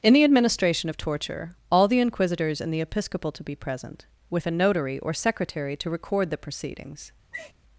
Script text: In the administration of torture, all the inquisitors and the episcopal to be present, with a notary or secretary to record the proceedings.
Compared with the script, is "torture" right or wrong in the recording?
right